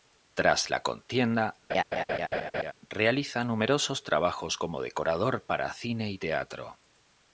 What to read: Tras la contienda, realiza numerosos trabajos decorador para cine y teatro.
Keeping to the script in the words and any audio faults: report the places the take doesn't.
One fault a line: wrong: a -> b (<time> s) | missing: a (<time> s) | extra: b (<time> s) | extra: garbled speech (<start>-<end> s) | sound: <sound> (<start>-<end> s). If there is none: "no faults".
sound: laugh (1.7-2.7 s)
extra: como (4.6 s)